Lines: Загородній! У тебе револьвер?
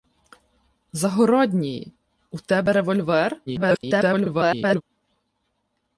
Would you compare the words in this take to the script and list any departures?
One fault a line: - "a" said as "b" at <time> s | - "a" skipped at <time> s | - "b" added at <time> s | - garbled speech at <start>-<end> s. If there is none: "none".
- garbled speech at 3.5-4.8 s